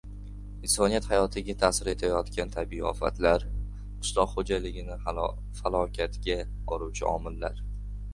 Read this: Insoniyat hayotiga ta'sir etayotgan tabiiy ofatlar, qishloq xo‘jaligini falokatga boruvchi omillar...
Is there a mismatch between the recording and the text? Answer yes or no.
no